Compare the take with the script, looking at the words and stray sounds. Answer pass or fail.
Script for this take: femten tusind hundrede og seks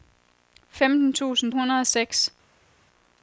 pass